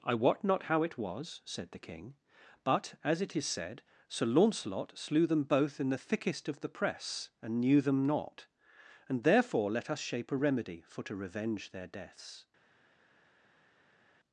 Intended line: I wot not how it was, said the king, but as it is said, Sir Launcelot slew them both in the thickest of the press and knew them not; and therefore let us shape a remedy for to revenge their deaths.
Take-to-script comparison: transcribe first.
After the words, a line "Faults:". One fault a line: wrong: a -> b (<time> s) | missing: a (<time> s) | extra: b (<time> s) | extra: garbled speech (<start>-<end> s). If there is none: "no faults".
I wot not how it was, said the king, but as it is said, Sir Launcelot slew them both in the thickest of the press and knew them not; and therefore let us shape a remedy for to revenge their deaths.
Faults:
no faults